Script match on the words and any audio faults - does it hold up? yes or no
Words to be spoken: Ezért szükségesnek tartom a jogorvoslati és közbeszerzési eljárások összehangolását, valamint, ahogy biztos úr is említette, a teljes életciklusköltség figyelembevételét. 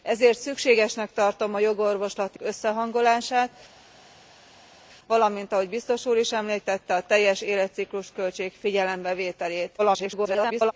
no